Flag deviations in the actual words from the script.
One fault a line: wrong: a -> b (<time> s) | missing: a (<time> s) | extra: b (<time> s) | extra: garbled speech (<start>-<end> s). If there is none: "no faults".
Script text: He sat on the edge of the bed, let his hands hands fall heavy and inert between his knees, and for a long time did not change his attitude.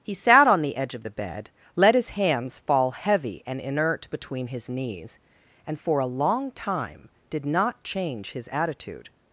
missing: hands (2.6 s)